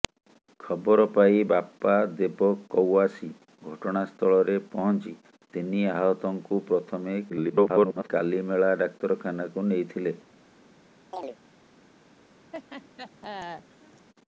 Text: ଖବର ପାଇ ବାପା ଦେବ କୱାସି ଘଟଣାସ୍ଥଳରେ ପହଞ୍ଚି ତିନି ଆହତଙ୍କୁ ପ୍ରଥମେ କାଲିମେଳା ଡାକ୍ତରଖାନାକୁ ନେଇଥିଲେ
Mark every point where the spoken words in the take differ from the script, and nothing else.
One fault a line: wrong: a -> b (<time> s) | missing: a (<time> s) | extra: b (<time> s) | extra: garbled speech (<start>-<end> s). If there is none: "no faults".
extra: garbled speech (7.3-8.1 s)